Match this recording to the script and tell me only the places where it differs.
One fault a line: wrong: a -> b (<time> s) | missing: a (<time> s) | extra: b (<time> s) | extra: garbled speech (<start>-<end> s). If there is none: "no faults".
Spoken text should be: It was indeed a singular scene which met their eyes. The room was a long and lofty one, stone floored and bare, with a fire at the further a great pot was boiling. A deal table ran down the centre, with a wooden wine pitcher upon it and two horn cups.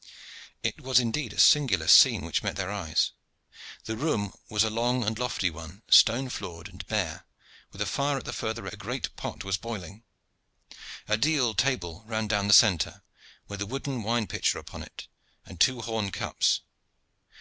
no faults